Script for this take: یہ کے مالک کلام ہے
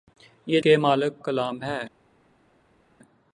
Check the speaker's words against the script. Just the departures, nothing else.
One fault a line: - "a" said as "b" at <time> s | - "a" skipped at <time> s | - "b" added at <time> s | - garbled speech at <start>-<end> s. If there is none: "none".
none